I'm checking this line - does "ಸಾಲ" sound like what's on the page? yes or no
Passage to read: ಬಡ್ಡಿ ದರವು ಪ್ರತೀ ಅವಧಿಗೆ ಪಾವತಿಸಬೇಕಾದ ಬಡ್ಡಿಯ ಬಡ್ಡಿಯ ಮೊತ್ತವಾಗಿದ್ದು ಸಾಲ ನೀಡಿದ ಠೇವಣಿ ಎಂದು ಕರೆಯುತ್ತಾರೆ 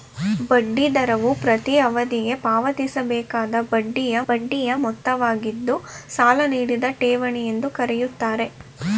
yes